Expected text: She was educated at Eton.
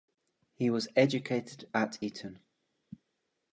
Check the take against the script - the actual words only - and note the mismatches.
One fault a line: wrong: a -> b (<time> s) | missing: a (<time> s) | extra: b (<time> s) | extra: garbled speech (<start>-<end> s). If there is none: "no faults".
wrong: She -> He (0.6 s)